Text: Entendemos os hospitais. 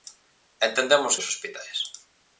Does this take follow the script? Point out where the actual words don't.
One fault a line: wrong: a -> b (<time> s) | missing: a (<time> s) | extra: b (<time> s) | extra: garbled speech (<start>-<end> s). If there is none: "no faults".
no faults